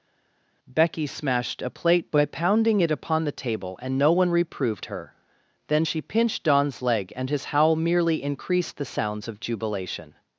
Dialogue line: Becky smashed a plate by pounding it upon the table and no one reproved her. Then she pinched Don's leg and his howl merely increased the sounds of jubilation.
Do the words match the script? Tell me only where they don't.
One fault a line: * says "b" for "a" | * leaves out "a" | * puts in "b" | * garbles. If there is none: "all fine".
all fine